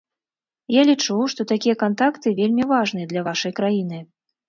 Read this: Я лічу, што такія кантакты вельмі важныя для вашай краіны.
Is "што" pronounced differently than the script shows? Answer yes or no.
no